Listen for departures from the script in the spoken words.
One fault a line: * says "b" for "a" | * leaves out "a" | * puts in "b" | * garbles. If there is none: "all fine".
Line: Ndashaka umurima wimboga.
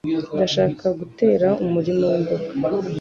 * puts in "gutera"